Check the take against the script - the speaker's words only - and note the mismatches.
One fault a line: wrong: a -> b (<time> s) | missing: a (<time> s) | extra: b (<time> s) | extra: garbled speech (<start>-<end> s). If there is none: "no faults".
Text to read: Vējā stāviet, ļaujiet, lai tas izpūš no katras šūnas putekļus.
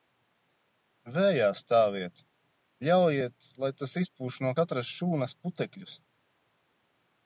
no faults